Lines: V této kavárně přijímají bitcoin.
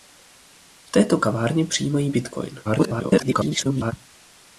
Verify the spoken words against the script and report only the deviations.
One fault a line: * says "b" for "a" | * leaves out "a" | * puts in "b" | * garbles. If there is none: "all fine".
* garbles